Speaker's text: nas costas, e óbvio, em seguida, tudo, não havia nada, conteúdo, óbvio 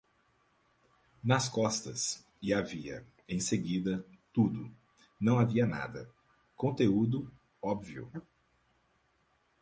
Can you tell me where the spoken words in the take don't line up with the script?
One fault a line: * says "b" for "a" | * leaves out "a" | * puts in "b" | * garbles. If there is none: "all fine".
* says "havia" for "óbvio"